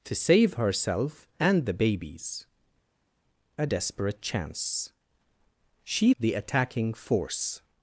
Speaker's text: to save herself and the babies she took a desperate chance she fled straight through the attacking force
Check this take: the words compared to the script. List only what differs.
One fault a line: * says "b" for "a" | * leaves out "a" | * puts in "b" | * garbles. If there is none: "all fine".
* leaves out "she took"
* leaves out "fled straight through"